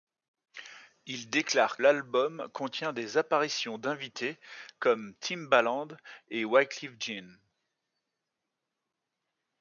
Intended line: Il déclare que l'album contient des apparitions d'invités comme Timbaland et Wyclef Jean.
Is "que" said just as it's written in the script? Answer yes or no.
no